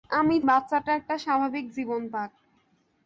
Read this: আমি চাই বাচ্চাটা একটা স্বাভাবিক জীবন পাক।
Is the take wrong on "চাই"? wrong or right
wrong